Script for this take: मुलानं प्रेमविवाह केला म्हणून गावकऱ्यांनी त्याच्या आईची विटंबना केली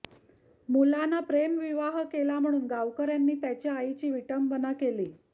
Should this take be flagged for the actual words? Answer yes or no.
no